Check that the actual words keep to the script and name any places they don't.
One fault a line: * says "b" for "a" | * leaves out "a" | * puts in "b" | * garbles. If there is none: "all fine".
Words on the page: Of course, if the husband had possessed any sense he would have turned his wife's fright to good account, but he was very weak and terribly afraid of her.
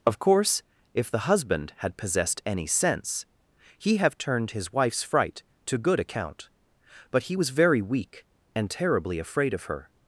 * leaves out "would"